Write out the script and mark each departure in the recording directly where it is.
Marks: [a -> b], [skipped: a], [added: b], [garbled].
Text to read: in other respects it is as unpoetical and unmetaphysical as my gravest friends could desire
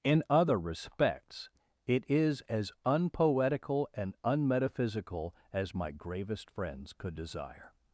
in other respects it is as unpoetical and unmetaphysical as my gravest friends could desire